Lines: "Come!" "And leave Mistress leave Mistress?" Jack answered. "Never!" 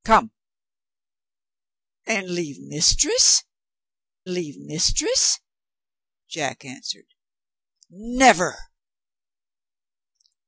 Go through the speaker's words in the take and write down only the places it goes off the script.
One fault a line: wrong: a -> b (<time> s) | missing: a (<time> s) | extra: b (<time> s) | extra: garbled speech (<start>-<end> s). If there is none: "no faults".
no faults